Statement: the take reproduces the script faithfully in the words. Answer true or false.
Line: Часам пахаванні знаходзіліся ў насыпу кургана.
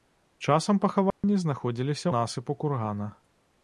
false